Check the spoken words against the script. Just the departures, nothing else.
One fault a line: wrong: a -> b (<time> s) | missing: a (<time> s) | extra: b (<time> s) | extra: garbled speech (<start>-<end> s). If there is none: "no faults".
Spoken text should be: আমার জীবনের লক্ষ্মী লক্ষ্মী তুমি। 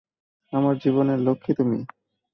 missing: লক্ষ্মী (1.5 s)